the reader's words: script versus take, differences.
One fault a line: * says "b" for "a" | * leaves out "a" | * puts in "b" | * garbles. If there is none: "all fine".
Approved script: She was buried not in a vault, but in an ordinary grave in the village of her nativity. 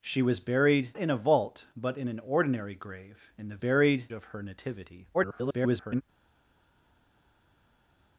* leaves out "not"
* says "buried" for "village"
* garbles